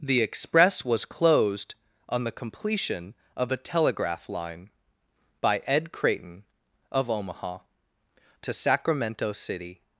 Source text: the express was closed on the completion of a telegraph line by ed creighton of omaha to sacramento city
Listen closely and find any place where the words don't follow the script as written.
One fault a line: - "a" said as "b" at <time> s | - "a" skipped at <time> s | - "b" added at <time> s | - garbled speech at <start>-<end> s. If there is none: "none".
none